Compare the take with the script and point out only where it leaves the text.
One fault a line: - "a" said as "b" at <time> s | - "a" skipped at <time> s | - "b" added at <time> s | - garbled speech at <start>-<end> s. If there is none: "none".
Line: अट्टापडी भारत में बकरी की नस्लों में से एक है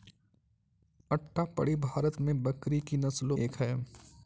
- "में से" skipped at 3.4 s